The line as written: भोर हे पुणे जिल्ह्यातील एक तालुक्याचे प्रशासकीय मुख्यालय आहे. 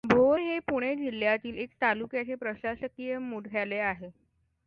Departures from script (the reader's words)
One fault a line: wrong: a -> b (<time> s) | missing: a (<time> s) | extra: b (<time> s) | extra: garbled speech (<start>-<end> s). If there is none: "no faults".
no faults